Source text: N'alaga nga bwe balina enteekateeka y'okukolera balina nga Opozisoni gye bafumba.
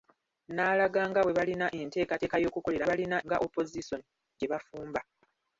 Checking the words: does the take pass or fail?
pass